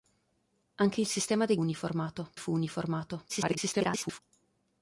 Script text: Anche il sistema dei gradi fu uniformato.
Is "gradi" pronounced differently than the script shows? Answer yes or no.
yes